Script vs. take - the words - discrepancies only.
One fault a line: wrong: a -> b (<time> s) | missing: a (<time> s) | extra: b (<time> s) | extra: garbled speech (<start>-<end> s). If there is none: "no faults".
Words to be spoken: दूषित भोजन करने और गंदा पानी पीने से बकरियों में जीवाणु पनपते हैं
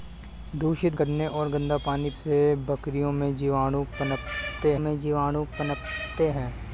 missing: भोजन (0.9 s)
missing: पीने (2.1 s)
extra: में जीवाणु पनपते (4.8 s)